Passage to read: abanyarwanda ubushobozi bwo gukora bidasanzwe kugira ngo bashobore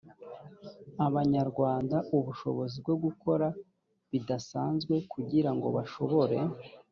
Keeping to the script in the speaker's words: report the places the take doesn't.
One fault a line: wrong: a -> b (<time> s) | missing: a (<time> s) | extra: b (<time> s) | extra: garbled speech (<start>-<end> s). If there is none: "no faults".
no faults